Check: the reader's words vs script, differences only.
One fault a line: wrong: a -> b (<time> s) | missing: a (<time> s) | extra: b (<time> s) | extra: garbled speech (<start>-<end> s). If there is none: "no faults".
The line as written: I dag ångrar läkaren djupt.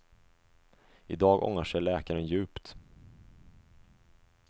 extra: sig (1.6 s)